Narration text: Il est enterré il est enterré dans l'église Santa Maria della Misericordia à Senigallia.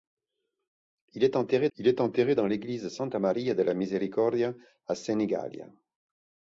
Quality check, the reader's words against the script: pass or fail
pass